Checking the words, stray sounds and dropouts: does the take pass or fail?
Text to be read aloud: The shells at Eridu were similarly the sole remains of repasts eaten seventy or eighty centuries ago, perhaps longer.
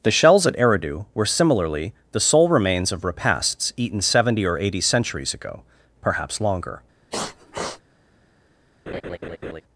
fail